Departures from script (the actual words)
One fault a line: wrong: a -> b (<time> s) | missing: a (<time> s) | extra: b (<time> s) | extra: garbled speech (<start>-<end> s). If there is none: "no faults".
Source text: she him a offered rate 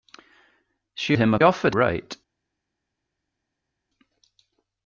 no faults